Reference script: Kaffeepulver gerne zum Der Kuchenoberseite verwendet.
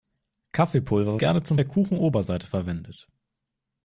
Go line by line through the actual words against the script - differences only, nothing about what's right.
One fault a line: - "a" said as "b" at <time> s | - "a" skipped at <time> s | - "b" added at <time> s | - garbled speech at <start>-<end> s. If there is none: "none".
none